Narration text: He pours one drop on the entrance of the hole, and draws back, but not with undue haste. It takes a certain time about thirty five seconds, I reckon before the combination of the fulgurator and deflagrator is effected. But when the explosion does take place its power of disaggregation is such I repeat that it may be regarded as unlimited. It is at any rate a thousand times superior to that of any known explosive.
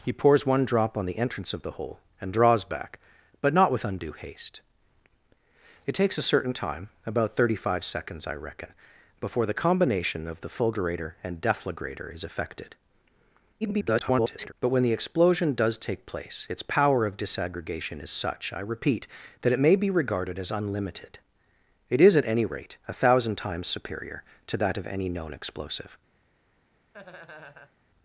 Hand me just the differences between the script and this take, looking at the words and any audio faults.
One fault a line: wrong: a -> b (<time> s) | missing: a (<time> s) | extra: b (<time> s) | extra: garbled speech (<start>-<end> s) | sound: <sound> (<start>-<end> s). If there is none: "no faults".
extra: garbled speech (13.6-14.5 s)
sound: laugh (26.9-27.8 s)